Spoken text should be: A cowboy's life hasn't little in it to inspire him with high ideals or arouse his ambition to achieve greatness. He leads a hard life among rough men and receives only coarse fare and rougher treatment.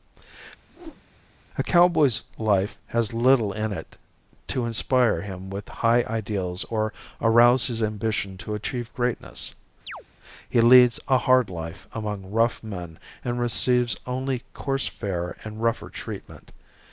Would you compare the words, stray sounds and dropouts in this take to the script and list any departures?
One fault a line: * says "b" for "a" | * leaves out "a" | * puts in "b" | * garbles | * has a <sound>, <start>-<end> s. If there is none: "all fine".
* has a whoosh, 0.7-1.1 s
* says "has" for "hasn't"
* has a chirp, 9.9-10.0 s